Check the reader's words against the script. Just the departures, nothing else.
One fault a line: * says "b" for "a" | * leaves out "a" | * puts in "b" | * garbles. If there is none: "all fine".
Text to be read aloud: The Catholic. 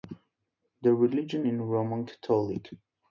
* puts in "religion is Roman"